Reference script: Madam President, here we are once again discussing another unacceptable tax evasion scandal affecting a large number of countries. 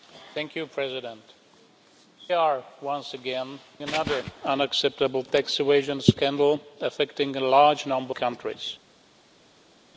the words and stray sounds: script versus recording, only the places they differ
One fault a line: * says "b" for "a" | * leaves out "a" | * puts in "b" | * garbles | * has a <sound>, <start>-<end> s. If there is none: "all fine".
* leaves out "here we"
* leaves out "discussing"
* leaves out "of"